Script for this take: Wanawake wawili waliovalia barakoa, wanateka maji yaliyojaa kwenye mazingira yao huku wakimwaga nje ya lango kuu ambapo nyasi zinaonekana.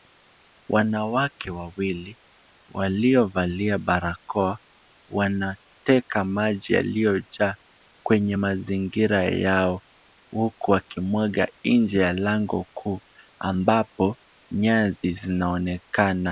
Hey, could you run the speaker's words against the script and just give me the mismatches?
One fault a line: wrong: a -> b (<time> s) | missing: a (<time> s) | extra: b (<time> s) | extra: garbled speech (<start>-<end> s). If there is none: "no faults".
no faults